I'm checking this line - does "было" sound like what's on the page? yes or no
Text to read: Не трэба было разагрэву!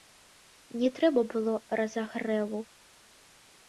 yes